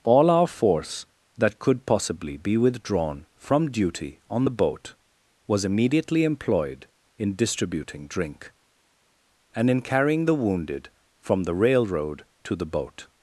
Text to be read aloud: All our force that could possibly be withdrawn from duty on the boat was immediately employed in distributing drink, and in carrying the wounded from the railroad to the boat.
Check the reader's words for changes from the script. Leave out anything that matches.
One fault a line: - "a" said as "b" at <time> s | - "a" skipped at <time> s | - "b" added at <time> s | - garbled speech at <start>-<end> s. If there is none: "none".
none